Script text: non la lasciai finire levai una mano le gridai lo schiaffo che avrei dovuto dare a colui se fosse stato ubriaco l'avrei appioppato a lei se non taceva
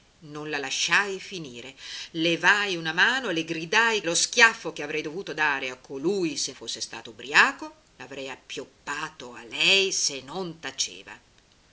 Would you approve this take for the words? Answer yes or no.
yes